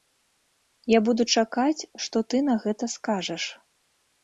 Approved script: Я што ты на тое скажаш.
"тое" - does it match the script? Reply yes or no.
no